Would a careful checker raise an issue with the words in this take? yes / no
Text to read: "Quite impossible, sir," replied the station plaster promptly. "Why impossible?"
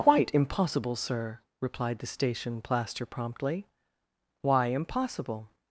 no